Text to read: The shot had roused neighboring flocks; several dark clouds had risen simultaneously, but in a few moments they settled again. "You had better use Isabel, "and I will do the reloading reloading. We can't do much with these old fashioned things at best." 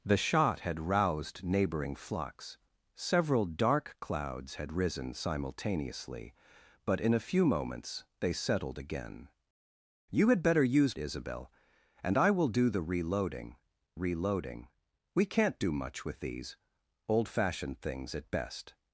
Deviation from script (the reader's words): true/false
false